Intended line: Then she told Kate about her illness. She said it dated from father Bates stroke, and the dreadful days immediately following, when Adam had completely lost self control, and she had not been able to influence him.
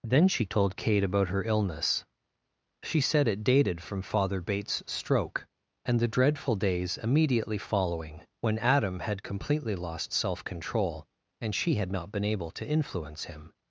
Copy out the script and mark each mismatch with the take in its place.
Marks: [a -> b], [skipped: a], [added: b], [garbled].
Then she told Kate about her illness. She said it dated from father Bates stroke, and the dreadful days immediately following, when Adam had completely lost self control, and she had not been able to influence him.